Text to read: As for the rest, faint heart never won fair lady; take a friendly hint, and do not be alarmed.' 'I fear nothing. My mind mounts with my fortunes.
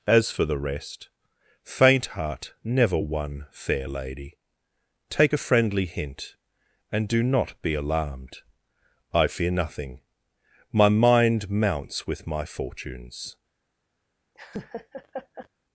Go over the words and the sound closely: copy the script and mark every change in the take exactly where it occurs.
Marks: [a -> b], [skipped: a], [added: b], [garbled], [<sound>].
As for the rest, faint heart never won fair lady; take a friendly hint, and do not be alarmed.' 'I fear nothing. My mind mounts with my fortunes. [laugh]